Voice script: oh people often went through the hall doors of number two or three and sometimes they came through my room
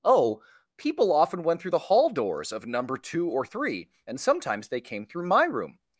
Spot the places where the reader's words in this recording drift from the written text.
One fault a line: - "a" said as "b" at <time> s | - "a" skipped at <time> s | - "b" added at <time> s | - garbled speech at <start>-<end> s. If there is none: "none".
none